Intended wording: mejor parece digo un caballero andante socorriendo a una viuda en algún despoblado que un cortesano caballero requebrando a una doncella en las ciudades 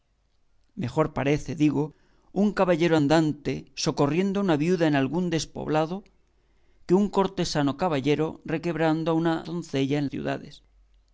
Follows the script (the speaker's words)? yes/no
no